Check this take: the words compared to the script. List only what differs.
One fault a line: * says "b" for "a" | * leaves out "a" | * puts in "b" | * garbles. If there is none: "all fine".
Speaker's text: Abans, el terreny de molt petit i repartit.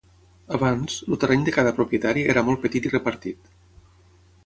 * puts in "cada propietari era"